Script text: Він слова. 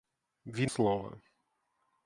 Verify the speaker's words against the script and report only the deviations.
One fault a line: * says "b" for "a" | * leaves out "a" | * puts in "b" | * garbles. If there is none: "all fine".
all fine